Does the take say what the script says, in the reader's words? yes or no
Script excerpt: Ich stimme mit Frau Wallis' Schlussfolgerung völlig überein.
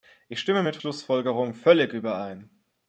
no